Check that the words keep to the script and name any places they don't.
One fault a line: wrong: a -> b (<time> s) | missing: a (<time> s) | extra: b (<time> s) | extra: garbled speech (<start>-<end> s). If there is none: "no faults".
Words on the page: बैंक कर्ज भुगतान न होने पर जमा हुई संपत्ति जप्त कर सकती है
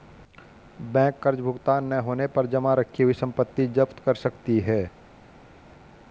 extra: रखी (2.7 s)